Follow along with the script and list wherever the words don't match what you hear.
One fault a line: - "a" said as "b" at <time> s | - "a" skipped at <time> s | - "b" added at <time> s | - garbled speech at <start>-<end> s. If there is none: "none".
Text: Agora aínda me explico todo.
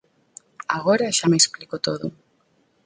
- "aínda" said as "xa" at 1.2 s